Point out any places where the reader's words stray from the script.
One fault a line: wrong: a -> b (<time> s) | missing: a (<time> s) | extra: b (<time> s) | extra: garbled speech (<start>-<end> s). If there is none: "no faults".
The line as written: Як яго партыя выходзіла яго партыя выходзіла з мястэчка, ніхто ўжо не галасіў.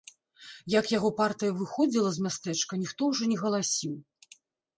missing: яго партыя выходзіла (2.1 s)